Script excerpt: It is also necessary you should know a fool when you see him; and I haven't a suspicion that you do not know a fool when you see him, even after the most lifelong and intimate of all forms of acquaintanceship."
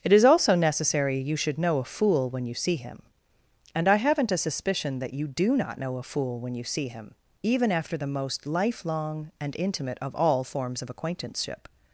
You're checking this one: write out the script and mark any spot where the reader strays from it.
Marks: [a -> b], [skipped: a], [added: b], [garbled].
It is also necessary you should know a fool when you see him; and I haven't a suspicion that you do not know a fool when you see him, even after the most lifelong and intimate of all forms of acquaintanceship."